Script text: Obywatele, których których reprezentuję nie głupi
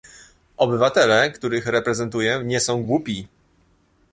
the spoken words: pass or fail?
fail